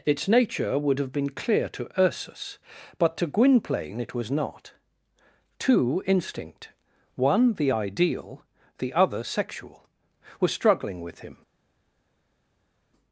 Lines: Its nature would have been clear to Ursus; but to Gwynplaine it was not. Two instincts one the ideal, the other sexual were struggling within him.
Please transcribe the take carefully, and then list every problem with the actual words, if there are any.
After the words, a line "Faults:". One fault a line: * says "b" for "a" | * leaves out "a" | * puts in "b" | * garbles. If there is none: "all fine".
Its nature would have been clear to Ursus; but to Gwynplaine it was not. Two instinct one the ideal, the other sexual were struggling with him.
Faults:
* says "instinct" for "instincts"
* says "with" for "within"